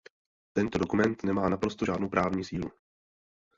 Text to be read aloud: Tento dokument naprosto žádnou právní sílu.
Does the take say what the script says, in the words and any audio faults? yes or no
no